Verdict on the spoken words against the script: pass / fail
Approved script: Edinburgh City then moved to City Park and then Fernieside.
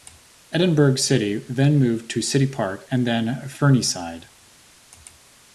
pass